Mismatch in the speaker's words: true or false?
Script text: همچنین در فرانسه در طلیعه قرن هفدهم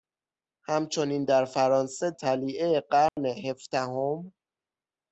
true